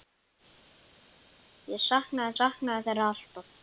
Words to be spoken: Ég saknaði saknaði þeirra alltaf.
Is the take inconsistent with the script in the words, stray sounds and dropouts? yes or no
no